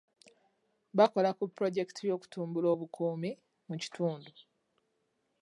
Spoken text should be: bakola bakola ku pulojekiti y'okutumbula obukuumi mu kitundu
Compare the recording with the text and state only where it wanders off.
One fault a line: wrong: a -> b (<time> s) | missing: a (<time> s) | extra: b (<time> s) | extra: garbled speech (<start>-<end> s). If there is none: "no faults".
missing: bakola (1.3 s)